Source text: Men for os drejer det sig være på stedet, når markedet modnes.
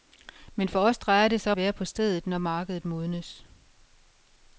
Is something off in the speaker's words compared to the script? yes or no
no